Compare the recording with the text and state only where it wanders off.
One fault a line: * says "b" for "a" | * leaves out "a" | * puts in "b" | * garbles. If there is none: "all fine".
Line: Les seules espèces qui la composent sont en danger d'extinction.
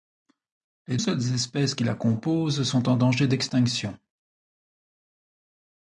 all fine